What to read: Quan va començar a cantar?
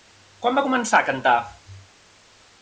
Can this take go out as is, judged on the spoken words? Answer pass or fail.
pass